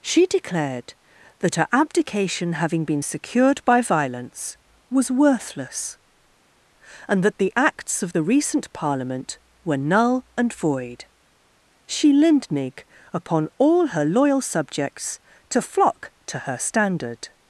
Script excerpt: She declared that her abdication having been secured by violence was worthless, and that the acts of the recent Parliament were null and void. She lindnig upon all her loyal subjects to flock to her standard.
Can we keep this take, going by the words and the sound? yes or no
yes